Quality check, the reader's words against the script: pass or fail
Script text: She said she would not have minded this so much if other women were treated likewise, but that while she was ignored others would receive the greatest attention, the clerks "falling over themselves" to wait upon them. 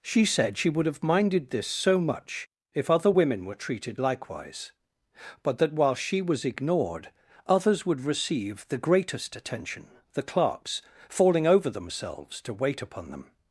fail